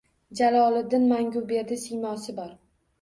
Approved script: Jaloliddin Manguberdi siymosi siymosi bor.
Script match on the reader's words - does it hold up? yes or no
no